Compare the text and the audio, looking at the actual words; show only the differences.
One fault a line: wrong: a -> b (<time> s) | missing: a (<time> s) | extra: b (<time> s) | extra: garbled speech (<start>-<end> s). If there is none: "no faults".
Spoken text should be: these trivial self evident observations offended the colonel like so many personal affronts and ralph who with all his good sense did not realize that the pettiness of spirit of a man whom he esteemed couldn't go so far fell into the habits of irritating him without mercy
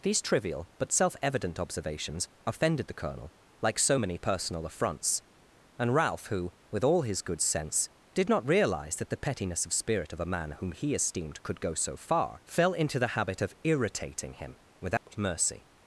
extra: but (0.8 s)
wrong: couldn't -> could (11.4 s)
wrong: habits -> habit (13.2 s)